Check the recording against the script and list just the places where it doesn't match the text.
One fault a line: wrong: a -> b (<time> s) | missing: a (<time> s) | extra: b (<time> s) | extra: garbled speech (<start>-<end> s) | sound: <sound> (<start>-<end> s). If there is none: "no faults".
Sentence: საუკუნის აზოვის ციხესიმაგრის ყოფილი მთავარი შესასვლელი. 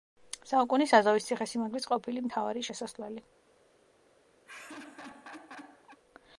sound: laugh (4.5-6.0 s)